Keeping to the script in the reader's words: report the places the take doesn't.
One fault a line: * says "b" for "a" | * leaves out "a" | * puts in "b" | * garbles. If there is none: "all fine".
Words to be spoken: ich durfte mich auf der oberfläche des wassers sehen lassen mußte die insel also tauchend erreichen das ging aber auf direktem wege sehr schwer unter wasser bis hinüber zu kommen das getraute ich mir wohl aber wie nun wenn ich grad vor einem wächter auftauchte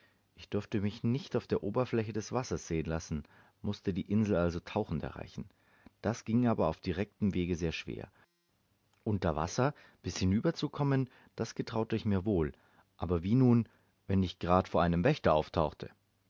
* puts in "nicht"